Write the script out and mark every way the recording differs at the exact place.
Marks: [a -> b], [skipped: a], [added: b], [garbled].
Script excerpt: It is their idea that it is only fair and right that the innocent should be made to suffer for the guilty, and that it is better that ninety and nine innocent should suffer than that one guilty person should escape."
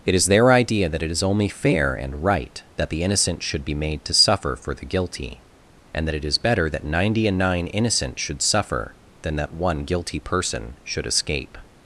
It is their idea that it is only fair and right that the innocent should be made to suffer for the guilty, and that it is better that ninety and nine innocent should suffer than that one guilty person should escape."